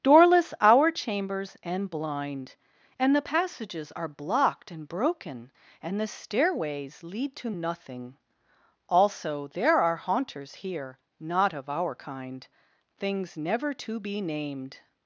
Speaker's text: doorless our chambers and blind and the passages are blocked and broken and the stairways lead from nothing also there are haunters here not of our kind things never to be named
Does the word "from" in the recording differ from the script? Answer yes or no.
yes